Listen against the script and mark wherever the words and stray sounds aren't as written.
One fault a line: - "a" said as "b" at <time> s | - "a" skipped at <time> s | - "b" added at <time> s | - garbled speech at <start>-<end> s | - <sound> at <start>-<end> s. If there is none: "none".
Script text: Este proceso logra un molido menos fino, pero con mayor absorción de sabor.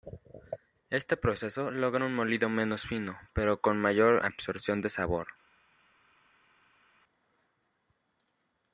none